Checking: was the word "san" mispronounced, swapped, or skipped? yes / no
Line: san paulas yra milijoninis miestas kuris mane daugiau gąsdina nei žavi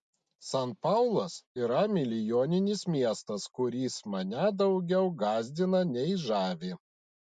no